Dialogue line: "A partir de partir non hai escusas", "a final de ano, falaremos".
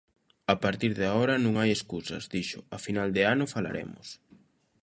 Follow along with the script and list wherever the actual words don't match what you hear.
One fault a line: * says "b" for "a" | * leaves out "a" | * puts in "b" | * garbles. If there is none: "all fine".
* says "agora" for "partir"
* puts in "dixo"